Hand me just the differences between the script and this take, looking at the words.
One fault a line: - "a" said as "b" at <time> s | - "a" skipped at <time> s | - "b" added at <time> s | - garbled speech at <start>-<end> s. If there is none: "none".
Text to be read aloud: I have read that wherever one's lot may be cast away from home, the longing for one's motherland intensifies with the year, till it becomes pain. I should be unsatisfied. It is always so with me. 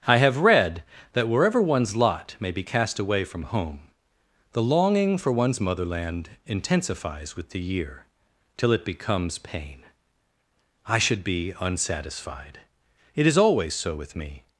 none